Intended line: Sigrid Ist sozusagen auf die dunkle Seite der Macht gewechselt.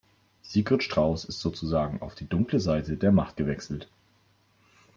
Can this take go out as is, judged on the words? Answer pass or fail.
fail